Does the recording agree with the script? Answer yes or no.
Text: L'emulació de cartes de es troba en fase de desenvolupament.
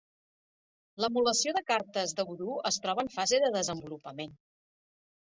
no